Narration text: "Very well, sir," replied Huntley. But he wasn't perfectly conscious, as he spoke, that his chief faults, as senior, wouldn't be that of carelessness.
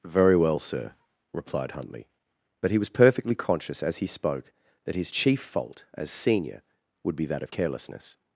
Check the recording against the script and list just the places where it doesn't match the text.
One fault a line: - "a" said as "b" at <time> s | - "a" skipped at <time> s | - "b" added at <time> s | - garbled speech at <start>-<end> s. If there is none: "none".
- "wasn't" said as "was" at 2.8 s
- "faults" said as "fault" at 5.4 s
- "wouldn't" said as "would" at 7.0 s